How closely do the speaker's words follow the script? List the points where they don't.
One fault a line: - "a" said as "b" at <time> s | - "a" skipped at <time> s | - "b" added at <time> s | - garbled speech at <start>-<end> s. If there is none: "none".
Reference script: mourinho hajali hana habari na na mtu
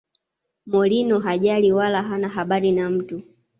- "wala" added at 1.7 s
- "na" skipped at 2.9 s